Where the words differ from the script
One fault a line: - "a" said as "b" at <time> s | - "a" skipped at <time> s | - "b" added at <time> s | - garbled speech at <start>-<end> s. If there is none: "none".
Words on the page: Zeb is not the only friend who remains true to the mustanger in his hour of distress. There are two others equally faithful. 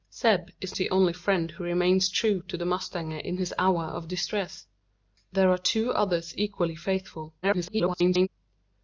- "not" skipped at 0.8 s
- garbled speech at 7.4-8.3 s